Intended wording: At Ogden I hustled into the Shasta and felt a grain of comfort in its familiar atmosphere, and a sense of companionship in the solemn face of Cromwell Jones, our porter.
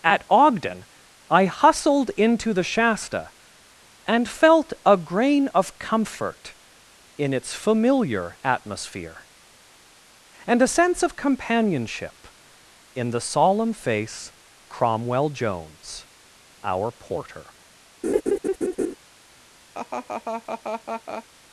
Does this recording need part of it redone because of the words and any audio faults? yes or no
yes